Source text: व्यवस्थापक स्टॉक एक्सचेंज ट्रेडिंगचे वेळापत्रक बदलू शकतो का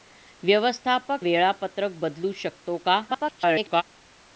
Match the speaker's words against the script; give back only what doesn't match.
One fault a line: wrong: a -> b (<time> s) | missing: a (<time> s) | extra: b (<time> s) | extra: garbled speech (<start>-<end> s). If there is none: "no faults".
missing: स्टॉक एक्सचेंज ट्रेडिंगचे (1.2 s)
extra: garbled speech (3.1-3.8 s)